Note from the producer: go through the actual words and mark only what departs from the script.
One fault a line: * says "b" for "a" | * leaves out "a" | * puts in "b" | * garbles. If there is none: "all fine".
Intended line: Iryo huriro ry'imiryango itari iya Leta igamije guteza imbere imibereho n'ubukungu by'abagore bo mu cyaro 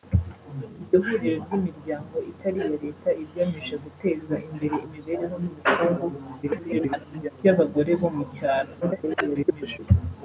* garbles
* garbles